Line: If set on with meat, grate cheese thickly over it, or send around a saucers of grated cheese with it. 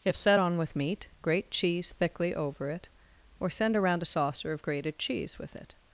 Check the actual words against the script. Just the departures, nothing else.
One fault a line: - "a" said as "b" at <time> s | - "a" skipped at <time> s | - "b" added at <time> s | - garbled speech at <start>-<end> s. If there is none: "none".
- "saucers" said as "saucer" at 4.1 s